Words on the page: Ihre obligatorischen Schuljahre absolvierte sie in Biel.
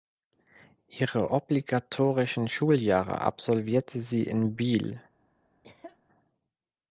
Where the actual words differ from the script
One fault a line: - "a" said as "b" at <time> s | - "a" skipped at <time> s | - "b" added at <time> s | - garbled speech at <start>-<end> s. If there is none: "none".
none